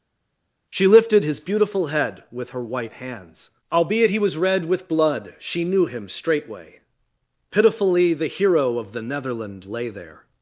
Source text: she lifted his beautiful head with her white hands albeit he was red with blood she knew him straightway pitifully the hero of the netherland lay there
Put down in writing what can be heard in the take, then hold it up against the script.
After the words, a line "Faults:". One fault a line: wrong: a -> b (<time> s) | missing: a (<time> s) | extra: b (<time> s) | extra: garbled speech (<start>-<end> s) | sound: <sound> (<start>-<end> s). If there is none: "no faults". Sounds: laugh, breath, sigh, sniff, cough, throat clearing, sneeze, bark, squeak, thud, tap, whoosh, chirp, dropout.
she lifted his beautiful head with her white hands albeit he was red with blood she knew him straightway pitifully the hero of the netherland lay there
Faults:
no faults